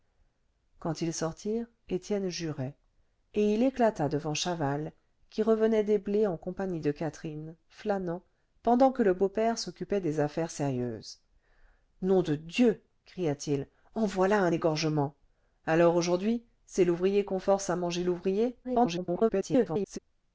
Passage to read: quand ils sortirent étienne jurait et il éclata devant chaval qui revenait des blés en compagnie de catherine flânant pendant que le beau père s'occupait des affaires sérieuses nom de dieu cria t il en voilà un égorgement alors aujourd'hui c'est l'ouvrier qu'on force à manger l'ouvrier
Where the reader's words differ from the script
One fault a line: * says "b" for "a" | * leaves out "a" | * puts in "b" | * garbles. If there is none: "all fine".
* garbles